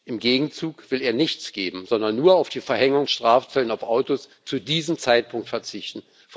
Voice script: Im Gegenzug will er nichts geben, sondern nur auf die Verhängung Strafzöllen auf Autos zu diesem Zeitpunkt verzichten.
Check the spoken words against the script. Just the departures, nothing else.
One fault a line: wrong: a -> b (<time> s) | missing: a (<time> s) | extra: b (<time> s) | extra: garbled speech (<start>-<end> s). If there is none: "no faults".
no faults